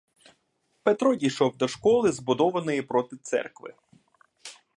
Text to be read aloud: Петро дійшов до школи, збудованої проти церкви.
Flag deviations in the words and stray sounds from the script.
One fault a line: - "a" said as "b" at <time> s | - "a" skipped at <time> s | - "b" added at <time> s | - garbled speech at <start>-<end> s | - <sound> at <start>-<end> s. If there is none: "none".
none